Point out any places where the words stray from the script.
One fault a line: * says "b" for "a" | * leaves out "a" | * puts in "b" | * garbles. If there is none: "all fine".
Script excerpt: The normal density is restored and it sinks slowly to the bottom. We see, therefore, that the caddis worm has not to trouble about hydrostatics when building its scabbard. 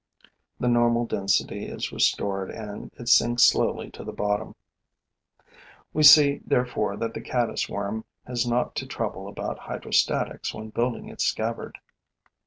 all fine